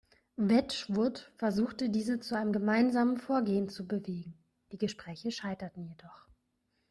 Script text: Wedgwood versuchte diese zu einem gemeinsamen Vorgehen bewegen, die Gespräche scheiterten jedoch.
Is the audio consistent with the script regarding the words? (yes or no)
no